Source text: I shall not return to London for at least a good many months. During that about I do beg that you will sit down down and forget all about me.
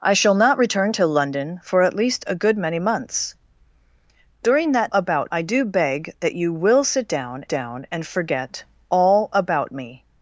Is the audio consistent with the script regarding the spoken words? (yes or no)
yes